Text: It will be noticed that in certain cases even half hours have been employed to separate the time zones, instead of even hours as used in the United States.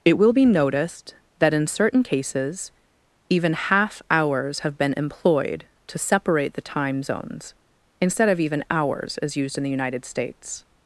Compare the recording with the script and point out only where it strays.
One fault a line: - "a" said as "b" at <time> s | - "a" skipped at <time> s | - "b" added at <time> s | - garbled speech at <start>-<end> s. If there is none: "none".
none